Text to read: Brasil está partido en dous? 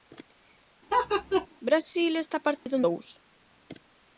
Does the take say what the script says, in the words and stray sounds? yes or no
no